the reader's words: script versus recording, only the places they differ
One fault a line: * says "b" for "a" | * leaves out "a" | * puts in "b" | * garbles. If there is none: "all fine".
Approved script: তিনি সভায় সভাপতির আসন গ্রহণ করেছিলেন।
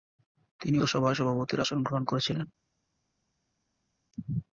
all fine